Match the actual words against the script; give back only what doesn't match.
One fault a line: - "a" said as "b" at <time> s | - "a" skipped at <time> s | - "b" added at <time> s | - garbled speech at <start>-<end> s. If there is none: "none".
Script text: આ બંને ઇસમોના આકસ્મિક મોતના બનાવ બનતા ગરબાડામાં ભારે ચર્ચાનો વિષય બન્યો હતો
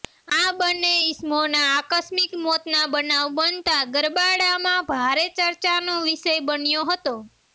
none